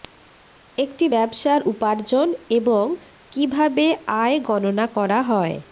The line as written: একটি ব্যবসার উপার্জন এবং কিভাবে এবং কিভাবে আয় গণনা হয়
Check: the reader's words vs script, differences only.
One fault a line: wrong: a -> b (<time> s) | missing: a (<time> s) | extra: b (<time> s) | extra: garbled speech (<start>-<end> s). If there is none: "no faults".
missing: এবং কিভাবে (3.8 s)
extra: করা (5.0 s)